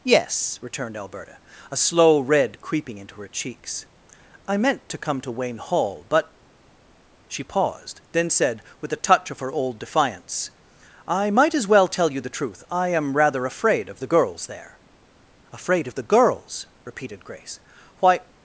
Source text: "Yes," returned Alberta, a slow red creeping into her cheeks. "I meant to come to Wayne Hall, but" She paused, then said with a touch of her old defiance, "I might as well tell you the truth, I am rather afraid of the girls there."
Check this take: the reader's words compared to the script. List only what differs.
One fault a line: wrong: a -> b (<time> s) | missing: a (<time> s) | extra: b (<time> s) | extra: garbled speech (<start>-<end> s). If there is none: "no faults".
extra: Afraid of the girls repeated Grace Why (15.5 s)